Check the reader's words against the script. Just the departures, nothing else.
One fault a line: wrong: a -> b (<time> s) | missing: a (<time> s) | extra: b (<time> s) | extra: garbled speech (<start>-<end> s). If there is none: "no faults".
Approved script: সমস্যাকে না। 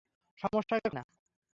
no faults